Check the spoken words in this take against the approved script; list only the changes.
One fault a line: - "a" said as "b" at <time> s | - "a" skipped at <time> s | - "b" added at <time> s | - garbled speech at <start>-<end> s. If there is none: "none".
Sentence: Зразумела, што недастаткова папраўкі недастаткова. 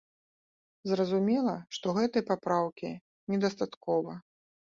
- "недастаткова" said as "гэтай" at 2.0 s